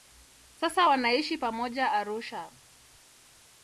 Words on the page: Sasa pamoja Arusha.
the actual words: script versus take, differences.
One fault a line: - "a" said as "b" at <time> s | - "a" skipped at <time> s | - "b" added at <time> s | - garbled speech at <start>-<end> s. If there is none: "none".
- "wanaishi" added at 0.8 s